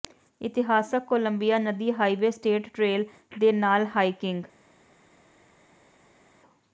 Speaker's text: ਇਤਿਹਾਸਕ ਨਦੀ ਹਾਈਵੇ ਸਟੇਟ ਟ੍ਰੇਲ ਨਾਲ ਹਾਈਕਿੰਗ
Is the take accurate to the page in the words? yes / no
no